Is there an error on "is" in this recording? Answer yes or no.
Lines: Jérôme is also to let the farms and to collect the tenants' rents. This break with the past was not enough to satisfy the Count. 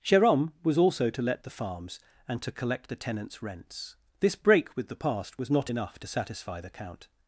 yes